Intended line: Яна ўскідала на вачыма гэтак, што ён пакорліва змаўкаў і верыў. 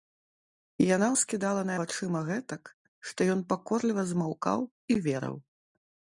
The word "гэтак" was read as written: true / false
true